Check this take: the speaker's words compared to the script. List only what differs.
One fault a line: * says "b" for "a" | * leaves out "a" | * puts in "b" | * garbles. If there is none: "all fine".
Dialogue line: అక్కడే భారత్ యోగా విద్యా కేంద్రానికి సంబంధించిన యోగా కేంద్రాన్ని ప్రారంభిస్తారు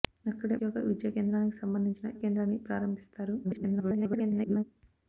* leaves out "భారత్"
* leaves out "యోగా"
* garbles